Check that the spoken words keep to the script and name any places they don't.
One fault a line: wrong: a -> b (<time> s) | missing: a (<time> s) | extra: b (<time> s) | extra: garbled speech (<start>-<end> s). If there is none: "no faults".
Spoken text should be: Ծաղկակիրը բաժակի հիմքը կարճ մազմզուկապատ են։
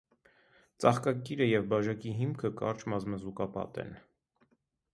extra: և (1.5 s)